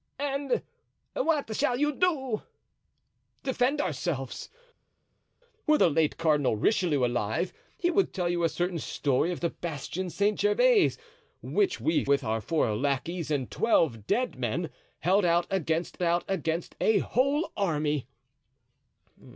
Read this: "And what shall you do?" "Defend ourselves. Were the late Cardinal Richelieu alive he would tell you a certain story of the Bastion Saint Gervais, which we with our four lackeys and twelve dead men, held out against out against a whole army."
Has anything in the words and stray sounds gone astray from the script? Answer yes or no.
no